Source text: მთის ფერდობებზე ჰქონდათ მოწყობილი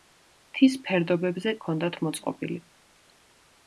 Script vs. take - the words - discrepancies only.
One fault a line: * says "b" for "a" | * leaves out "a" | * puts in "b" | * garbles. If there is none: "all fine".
all fine